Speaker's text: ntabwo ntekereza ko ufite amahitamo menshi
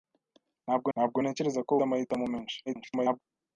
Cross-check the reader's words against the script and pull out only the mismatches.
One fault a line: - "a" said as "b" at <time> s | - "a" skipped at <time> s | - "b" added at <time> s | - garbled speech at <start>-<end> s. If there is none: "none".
- "ntabwo" added at 0.9 s
- "ufite" skipped at 1.7 s
- garbled speech at 2.7-3.2 s